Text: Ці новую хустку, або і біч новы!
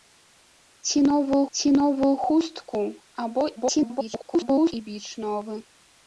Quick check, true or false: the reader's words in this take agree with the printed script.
false